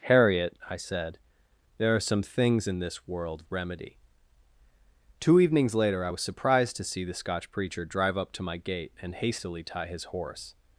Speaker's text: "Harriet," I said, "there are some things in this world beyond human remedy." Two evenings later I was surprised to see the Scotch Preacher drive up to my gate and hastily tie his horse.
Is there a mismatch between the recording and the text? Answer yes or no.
yes